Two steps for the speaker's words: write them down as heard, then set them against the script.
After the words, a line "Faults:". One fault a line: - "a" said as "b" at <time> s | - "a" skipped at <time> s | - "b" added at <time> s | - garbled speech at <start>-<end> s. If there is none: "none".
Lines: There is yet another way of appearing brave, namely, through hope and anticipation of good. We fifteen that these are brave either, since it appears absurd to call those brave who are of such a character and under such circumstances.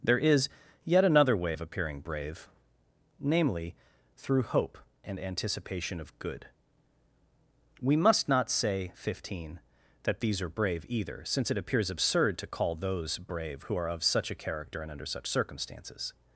There is yet another way of appearing brave, namely, through hope and anticipation of good. We must not say fifteen that these are brave either, since it appears absurd to call those brave who are of such a character and under such circumstances.
Faults:
- "must not say" added at 8.0 s